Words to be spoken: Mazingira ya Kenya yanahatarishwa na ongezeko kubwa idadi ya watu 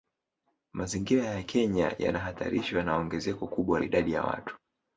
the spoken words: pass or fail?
pass